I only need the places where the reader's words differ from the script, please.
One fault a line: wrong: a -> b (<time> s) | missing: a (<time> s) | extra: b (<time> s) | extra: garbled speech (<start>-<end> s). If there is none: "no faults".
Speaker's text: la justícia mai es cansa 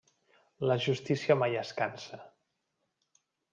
no faults